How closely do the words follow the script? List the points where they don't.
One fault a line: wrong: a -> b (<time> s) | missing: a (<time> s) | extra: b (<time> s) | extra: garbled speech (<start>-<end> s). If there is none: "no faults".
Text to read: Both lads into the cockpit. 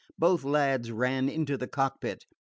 extra: ran (0.9 s)